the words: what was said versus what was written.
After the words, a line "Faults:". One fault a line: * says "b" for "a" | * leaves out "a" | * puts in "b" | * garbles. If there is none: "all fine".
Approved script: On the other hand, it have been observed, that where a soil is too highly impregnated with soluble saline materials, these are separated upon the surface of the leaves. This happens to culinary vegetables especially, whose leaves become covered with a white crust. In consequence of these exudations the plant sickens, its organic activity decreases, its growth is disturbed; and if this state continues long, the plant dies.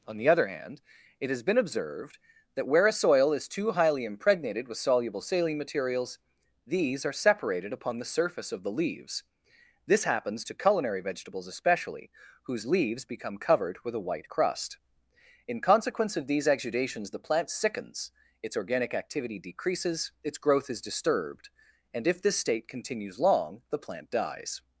On the other hand, it has been observed, that where a soil is too highly impregnated with soluble saline materials, these are separated upon the surface of the leaves. This happens to culinary vegetables especially, whose leaves become covered with a white crust. In consequence of these exudations the plant sickens, its organic activity decreases, its growth is disturbed; and if this state continues long, the plant dies.
Faults:
* says "has" for "have"